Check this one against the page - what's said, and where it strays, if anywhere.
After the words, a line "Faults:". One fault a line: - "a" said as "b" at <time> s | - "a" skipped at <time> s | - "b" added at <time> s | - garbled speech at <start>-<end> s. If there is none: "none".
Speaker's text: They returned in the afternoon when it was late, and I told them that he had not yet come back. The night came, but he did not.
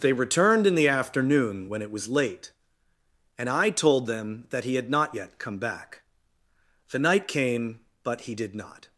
They returned in the afternoon when it was late, and I told them that he had not yet come back. The night came, but he did not.
Faults:
none